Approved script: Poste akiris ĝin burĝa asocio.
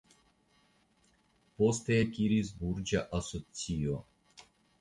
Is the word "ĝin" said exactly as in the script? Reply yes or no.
no